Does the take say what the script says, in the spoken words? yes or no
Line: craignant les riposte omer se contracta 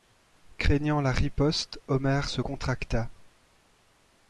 no